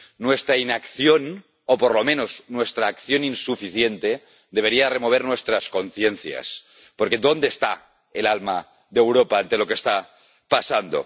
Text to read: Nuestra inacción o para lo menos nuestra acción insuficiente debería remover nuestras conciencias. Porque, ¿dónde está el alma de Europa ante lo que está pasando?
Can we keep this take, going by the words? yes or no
no